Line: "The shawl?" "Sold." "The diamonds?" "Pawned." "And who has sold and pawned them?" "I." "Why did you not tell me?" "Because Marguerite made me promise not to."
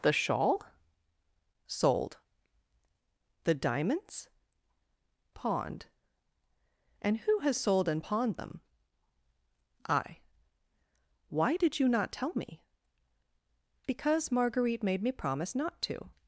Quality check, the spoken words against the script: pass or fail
pass